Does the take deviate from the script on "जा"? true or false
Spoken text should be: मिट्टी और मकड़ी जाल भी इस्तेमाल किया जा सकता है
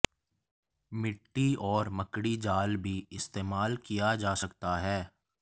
false